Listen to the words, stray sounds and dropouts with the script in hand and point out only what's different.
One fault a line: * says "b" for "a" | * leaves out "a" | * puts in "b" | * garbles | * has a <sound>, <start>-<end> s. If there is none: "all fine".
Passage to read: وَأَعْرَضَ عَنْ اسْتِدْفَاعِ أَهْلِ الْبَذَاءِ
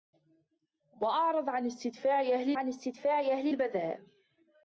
* puts in "عَنْ اسْتِدْفَاعِ أَهْلِ"